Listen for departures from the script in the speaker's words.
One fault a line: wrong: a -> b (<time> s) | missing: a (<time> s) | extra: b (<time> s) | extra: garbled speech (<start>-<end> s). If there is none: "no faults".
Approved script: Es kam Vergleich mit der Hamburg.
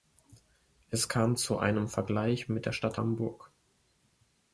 extra: zu einem (1.3 s)
extra: Stadt (2.7 s)